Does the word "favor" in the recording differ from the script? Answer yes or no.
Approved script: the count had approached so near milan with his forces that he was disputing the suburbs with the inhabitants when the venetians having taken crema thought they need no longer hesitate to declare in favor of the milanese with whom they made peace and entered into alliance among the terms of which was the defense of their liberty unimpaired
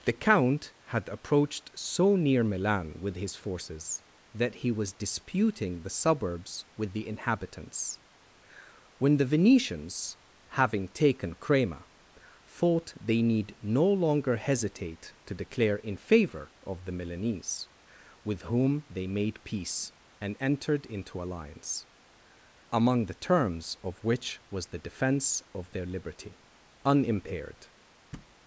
no